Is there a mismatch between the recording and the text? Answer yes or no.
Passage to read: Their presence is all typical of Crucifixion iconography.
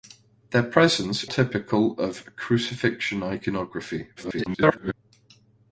yes